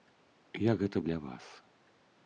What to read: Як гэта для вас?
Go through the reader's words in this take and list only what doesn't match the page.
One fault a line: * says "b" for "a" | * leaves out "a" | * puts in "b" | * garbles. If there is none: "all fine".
all fine